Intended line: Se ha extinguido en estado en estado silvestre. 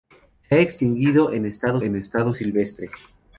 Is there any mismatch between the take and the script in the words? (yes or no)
no